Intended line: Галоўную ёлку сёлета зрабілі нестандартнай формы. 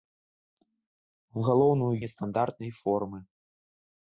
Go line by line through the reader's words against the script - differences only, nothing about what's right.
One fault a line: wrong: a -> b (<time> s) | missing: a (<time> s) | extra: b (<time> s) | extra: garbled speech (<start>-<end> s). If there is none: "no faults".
missing: ёлку сёлета зрабілі (1.9 s)